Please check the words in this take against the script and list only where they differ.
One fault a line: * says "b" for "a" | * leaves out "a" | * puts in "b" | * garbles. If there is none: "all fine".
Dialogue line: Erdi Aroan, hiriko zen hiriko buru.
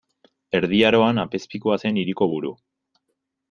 * says "apezpikua" for "hiriko"